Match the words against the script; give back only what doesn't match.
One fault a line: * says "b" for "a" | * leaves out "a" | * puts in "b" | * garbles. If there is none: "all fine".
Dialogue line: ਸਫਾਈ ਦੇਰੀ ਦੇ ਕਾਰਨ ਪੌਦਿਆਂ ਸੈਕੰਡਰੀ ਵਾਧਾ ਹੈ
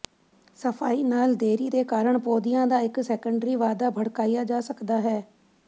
* puts in "ਨਾਲ"
* puts in "ਦਾ ਇੱਕ"
* puts in "ਭੜਕਾਇਆ ਜਾ ਸਕਦਾ"